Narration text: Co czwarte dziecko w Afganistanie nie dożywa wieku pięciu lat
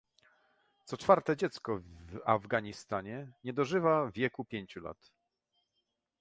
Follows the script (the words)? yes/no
yes